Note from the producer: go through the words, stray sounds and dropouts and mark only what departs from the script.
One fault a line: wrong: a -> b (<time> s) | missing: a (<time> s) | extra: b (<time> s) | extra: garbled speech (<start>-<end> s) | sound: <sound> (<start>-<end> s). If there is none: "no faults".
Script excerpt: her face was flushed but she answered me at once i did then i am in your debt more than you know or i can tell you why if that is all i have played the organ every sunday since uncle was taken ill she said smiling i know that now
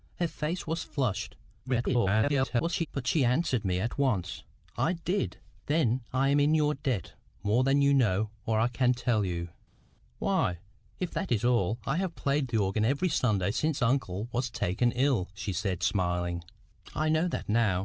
extra: garbled speech (1.6-2.9 s)